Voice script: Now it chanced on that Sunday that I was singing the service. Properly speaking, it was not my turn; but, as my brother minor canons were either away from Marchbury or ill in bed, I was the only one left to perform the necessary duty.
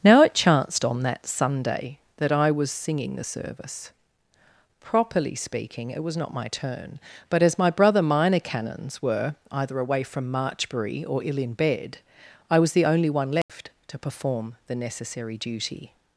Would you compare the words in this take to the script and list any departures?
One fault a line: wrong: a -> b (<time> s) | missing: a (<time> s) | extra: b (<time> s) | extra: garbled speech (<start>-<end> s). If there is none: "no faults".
no faults